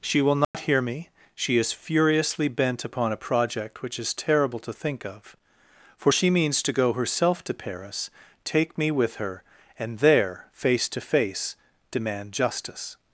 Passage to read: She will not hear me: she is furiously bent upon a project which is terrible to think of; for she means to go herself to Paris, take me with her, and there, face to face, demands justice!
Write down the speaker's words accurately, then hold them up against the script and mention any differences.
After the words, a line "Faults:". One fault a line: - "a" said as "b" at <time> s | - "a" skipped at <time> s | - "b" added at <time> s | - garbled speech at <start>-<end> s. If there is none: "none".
She will not hear me: she is furiously bent upon a project which is terrible to think of; for she means to go herself to Paris, take me with her, and there, face to face, demand justice!
Faults:
- "demands" said as "demand" at 11.9 s